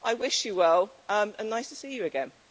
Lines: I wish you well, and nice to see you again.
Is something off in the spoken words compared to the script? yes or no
no